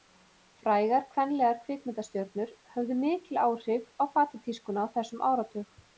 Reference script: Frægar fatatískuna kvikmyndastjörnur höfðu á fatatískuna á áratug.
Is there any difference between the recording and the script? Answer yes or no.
yes